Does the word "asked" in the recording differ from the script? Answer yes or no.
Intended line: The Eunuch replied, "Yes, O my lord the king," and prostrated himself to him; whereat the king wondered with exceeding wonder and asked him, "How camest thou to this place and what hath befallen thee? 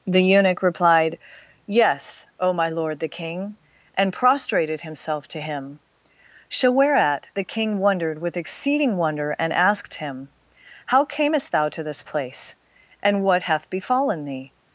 no